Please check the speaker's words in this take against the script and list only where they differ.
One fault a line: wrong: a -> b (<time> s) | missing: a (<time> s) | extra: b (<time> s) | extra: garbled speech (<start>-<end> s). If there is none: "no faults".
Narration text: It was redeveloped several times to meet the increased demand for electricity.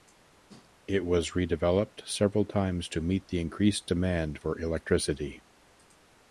no faults